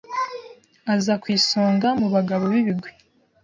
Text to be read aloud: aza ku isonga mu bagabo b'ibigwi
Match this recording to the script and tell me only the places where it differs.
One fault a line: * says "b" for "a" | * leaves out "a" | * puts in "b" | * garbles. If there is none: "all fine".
all fine